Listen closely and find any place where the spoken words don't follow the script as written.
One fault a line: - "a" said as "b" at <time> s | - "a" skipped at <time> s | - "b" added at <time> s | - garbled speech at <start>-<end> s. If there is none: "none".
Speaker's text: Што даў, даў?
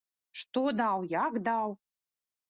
- "як" added at 1.1 s